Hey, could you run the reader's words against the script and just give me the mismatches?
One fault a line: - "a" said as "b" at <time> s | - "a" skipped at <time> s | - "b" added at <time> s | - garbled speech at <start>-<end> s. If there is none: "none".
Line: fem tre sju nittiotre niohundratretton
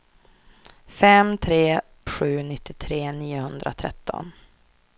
none